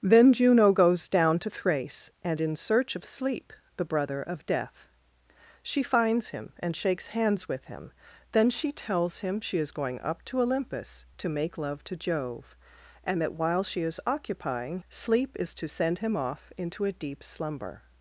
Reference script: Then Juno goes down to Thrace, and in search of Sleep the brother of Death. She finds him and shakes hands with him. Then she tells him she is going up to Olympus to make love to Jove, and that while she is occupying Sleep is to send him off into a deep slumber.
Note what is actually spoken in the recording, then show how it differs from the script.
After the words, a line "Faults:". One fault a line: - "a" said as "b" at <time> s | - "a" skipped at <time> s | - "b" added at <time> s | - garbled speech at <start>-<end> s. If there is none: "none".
Then Juno goes down to Thrace, and in search of Sleep the brother of Death. She finds him and shakes hands with him. Then she tells him she is going up to Olympus to make love to Jove, and that while she is occupying Sleep is to send him off into a deep slumber.
Faults:
none